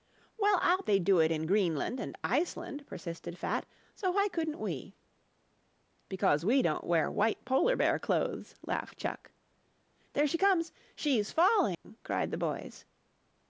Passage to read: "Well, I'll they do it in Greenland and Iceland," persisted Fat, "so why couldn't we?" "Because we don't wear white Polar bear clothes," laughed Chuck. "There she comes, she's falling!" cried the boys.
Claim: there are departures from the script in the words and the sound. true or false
true